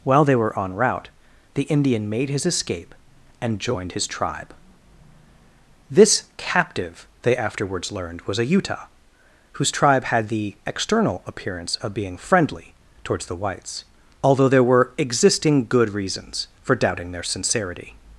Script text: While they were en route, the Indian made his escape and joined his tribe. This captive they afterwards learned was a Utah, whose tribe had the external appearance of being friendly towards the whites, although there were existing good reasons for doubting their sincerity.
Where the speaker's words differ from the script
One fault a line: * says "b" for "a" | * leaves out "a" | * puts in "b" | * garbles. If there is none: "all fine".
all fine